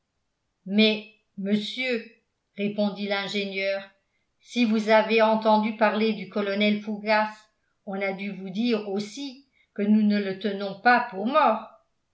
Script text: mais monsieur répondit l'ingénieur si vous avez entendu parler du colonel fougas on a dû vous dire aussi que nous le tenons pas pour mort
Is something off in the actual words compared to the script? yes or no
yes